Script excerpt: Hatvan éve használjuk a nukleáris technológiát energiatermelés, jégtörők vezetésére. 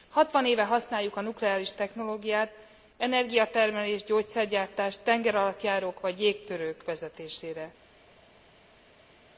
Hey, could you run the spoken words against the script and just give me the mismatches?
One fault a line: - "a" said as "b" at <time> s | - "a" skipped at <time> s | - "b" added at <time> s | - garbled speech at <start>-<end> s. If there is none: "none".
- "gyógyszergyártás tengeralattjárók vagy" added at 4.0 s